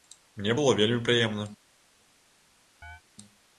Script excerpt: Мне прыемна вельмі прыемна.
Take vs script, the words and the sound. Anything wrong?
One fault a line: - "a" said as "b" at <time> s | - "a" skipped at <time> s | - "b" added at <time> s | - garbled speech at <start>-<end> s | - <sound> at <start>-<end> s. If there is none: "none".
- "прыемна" said as "было" at 0.6 s
- chirp at 2.8-3.0 s